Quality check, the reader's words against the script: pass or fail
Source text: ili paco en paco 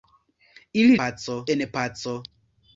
pass